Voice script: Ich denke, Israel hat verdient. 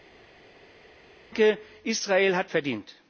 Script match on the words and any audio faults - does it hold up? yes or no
yes